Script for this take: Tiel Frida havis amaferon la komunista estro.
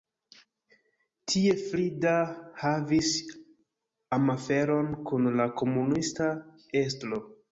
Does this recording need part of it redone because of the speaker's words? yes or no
yes